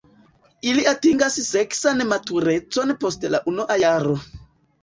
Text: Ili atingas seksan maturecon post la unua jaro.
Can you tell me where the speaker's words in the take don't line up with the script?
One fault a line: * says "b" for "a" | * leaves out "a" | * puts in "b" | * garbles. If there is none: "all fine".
all fine